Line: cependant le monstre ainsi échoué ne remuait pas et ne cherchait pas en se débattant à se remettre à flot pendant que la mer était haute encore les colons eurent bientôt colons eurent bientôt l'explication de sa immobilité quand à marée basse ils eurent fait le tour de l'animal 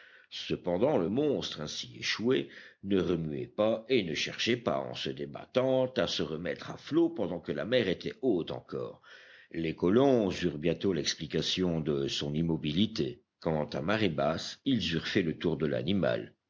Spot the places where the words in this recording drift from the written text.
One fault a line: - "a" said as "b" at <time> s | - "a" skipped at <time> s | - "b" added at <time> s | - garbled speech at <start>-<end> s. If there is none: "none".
- "colons eurent bientôt" skipped at 10.9 s
- "sa" said as "son" at 12.1 s